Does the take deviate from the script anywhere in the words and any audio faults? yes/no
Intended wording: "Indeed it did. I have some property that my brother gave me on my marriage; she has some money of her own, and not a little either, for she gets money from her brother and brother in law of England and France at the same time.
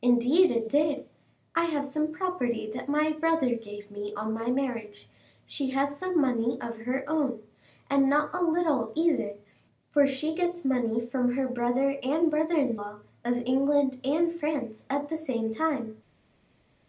no